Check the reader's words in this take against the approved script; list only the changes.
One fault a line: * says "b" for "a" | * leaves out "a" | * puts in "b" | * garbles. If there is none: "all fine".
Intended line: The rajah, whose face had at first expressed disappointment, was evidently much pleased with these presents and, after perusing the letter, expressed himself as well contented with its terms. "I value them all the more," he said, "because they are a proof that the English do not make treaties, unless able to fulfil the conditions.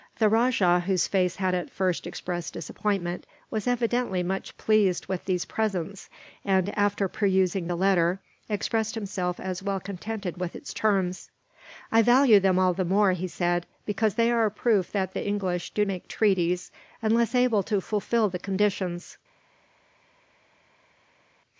* leaves out "not"